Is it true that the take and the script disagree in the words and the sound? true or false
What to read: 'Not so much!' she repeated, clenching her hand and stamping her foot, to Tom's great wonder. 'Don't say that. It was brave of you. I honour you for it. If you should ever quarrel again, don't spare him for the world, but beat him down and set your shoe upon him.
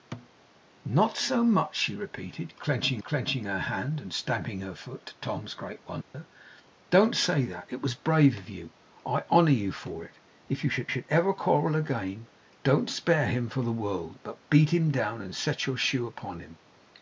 true